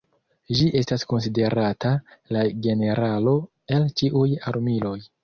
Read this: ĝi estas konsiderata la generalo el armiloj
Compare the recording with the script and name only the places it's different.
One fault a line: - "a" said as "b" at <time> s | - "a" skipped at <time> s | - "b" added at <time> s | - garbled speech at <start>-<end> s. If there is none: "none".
- "ĉiuj" added at 4.0 s